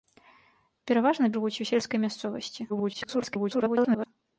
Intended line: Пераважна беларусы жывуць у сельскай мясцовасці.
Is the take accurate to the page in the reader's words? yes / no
no